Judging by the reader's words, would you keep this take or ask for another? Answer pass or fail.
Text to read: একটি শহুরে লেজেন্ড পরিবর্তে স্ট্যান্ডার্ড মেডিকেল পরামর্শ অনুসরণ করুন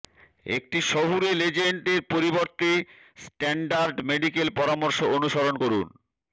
fail